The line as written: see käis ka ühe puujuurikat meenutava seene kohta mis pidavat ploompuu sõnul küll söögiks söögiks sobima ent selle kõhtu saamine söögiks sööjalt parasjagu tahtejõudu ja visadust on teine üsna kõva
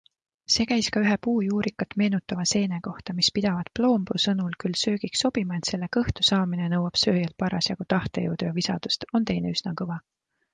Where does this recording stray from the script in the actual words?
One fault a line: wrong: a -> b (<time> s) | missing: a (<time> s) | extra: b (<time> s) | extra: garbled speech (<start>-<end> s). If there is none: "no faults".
missing: söögiks (5.2 s)
wrong: söögiks -> nõuab (6.7 s)